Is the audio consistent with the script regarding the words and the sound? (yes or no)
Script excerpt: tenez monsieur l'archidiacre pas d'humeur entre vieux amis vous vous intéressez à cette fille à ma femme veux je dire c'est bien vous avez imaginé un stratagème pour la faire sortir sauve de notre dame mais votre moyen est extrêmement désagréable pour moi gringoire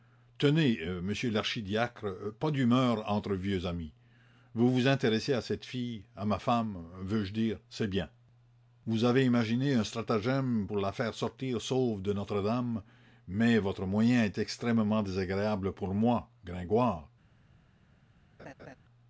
no